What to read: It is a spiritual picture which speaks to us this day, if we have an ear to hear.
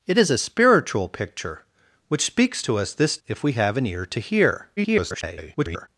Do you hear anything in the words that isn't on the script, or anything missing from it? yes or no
yes